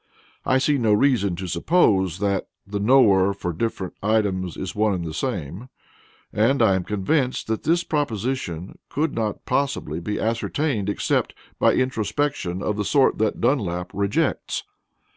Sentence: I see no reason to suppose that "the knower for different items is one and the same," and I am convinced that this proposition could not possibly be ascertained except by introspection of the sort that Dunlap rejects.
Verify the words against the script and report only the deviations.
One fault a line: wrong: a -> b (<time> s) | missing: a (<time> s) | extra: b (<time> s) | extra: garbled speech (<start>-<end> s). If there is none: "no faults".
no faults